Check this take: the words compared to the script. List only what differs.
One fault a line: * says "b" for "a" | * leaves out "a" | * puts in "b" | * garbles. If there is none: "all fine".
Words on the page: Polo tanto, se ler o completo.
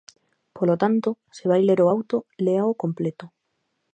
* puts in "vai"
* puts in "auto léao"